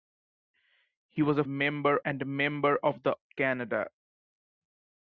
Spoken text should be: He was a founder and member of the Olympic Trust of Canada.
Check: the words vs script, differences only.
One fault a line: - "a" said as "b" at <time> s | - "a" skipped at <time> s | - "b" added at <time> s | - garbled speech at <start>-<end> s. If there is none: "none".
- "founder" said as "member" at 1.5 s
- "Olympic Trust of" skipped at 3.2 s